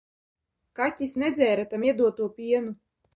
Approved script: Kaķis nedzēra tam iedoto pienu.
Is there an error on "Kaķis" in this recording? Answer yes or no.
no